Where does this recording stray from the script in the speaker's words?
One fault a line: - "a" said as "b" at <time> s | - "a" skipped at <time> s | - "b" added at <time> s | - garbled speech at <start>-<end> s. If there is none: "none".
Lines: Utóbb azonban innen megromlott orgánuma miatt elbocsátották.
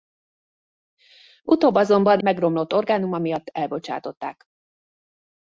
- "innen" skipped at 2.2 s